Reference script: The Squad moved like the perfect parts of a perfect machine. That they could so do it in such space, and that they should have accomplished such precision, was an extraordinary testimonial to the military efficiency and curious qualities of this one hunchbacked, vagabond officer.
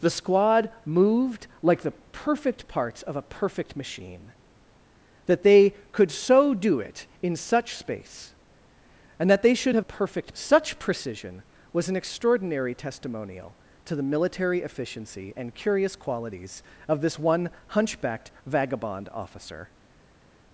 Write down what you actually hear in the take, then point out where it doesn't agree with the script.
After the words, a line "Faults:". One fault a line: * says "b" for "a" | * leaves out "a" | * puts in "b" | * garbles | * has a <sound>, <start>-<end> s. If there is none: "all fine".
The Squad moved like the perfect parts of a perfect machine. That they could so do it in such space, and that they should have perfect such precision, was an extraordinary testimonial to the military efficiency and curious qualities of this one hunchbacked, vagabond officer.
Faults:
* says "perfect" for "accomplished"